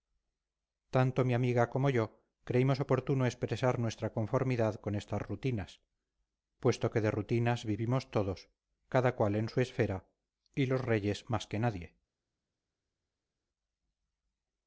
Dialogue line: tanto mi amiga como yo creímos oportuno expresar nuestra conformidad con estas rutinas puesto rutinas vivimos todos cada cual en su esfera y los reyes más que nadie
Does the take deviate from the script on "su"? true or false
false